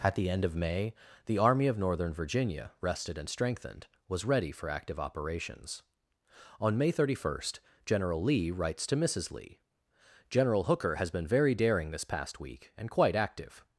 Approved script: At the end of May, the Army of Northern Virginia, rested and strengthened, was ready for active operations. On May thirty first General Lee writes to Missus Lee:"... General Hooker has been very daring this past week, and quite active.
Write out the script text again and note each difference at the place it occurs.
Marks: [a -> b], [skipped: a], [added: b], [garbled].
At the end of May, the Army of Northern Virginia, rested and strengthened, was ready for active operations. On May thirty first General Lee writes to Missus Lee:"... General Hooker has been very daring this past week, and quite active.